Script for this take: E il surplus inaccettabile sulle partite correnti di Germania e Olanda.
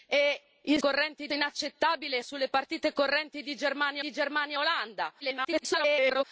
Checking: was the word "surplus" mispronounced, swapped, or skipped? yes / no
yes